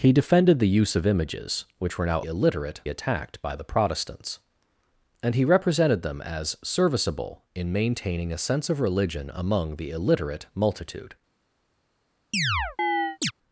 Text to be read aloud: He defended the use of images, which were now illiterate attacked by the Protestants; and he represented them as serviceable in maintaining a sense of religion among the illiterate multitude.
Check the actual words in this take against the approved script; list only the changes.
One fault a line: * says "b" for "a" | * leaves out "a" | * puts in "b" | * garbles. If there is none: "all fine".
all fine